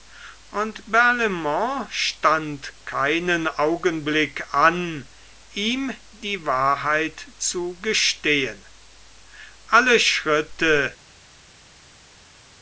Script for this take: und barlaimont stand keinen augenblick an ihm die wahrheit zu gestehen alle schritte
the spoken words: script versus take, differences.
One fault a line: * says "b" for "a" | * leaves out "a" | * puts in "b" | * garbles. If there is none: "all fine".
all fine